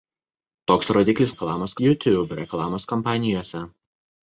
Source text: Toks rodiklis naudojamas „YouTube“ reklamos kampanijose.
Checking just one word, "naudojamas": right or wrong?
wrong